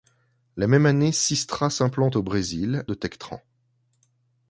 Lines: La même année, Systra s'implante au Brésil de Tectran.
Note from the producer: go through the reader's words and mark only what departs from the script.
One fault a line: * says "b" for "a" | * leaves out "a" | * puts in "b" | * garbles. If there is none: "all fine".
all fine